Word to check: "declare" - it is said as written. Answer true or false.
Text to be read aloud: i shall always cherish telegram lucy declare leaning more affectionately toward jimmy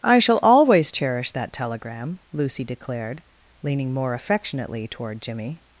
false